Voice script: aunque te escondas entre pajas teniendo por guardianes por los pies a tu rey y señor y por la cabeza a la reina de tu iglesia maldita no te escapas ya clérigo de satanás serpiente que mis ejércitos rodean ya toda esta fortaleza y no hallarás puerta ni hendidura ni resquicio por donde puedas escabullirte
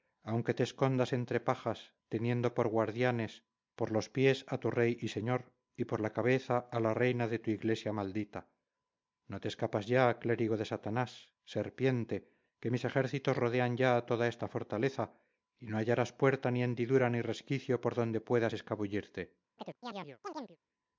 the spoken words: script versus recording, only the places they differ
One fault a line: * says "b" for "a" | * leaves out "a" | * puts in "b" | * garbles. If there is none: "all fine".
all fine